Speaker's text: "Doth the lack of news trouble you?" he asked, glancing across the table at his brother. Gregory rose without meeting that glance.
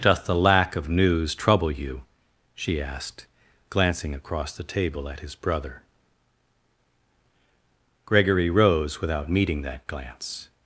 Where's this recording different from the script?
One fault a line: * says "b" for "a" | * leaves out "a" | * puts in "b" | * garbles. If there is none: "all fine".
* says "she" for "he"